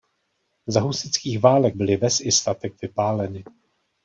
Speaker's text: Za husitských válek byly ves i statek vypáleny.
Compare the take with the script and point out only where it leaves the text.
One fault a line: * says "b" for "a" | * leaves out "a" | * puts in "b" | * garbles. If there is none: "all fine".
all fine